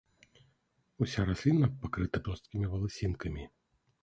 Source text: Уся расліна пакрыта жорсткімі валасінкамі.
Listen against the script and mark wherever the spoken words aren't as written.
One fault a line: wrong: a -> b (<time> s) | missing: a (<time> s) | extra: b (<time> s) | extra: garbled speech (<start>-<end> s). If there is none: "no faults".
no faults